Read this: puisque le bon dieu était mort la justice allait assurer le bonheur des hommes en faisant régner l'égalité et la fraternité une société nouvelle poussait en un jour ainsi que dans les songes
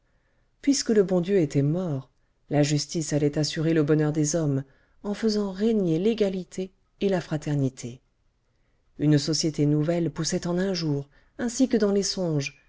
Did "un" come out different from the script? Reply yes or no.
no